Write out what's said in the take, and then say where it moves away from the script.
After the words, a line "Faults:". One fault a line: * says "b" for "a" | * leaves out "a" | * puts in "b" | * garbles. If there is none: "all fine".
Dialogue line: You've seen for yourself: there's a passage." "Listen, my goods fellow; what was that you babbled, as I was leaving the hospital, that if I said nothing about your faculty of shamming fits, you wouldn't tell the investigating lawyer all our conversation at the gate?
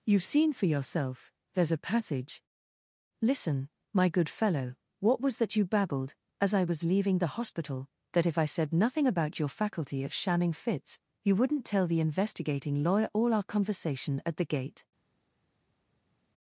You've seen for yourself: there's a passage." "Listen, my good fellow; what was that you babbled, as I was leaving the hospital, that if I said nothing about your faculty of shamming fits, you wouldn't tell the investigating lawyer all our conversation at the gate?
Faults:
* says "good" for "goods"